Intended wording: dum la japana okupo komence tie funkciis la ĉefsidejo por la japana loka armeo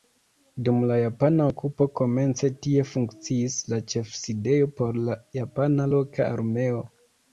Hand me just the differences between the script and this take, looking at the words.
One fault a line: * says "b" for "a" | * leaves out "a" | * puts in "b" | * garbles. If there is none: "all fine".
all fine